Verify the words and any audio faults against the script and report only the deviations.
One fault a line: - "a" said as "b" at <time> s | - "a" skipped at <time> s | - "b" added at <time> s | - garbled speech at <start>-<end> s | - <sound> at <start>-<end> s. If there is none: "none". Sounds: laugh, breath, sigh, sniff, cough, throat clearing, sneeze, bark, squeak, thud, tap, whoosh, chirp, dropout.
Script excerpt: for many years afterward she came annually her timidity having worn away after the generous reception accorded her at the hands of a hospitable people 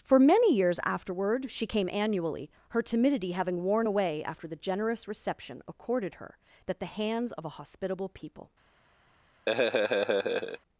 - "at" said as "that" at 6.7 s
- laugh at 9.5-10.6 s